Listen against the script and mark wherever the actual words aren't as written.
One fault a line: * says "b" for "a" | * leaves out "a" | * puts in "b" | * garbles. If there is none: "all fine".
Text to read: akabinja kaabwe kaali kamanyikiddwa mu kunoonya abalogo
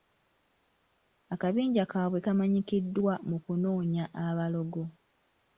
* leaves out "kaali"